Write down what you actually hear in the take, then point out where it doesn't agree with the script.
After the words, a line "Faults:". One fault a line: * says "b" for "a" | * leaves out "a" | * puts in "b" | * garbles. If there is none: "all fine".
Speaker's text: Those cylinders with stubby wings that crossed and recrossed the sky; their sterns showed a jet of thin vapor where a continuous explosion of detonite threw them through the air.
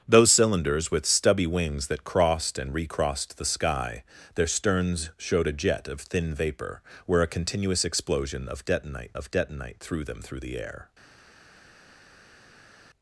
Those cylinders with stubby wings that crossed and recrossed the sky; their sterns showed a jet of thin vapor where a continuous explosion of detonite of detonite threw them through the air.
Faults:
* puts in "of detonite"